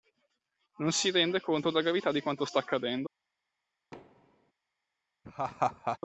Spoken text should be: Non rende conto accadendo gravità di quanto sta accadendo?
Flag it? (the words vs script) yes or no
yes